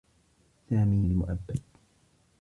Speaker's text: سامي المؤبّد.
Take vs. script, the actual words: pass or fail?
pass